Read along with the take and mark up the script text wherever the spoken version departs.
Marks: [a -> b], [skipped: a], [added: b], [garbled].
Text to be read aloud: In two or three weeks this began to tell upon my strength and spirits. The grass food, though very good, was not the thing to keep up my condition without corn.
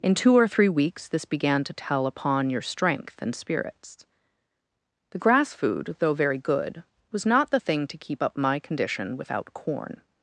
In two or three weeks this began to tell upon [my -> your] strength and spirits. The grass food, though very good, was not the thing to keep up my condition without corn.